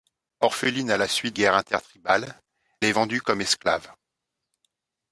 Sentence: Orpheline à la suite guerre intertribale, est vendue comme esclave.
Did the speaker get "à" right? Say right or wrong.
right